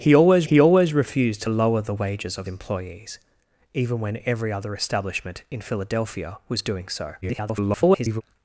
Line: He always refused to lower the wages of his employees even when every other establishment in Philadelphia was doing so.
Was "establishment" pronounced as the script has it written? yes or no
yes